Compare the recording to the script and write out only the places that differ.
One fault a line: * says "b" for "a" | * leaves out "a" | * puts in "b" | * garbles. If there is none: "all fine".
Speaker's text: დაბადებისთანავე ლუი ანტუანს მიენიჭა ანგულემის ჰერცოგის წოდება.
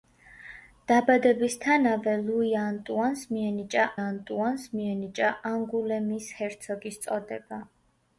* puts in "ანტუანს მიენიჭა"